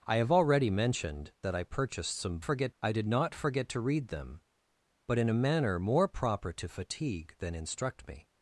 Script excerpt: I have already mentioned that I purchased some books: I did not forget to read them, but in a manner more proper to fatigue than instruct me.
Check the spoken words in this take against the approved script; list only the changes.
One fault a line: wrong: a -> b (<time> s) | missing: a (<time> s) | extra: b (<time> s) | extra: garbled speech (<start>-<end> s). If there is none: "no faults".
wrong: books -> forget (2.4 s)